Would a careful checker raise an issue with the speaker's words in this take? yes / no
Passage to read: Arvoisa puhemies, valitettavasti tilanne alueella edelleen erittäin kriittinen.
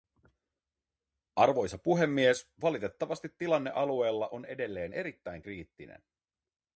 yes